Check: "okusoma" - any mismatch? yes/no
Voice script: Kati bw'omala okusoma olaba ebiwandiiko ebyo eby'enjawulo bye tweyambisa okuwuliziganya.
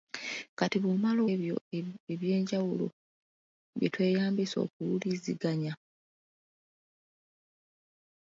yes